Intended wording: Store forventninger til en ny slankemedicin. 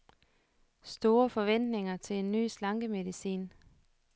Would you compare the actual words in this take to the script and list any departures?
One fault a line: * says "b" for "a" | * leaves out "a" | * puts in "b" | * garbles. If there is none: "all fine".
all fine